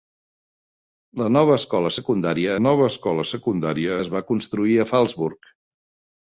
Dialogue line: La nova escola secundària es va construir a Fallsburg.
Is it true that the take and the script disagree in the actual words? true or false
true